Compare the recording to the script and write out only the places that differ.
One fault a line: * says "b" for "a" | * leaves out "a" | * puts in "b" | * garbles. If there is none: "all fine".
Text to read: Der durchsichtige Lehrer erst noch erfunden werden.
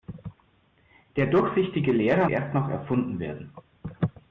all fine